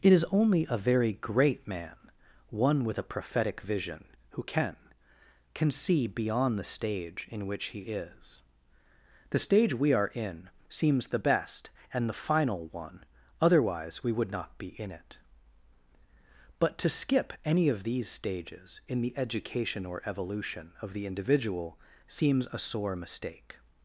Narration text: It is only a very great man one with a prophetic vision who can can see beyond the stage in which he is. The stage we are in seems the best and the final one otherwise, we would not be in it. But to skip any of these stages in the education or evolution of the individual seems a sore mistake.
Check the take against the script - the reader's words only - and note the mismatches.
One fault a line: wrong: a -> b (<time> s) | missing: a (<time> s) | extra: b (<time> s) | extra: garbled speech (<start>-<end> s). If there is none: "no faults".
no faults